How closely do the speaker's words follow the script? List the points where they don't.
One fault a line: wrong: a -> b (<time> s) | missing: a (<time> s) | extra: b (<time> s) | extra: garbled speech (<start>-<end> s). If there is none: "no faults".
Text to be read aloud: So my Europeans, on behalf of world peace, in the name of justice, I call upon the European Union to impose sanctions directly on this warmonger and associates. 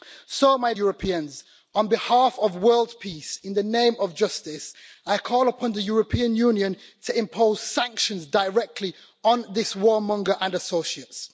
no faults